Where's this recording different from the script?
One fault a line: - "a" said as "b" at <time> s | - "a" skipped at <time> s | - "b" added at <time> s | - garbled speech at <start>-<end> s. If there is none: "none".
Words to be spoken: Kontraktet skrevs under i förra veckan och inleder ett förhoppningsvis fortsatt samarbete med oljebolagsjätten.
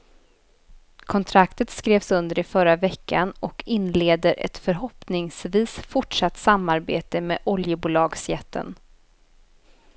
none